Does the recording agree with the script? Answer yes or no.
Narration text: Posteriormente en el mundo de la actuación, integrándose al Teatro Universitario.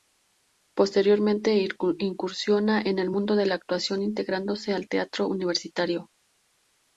no